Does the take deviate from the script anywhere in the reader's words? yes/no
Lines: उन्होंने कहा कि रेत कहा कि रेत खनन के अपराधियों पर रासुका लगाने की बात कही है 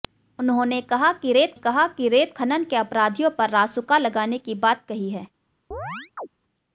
no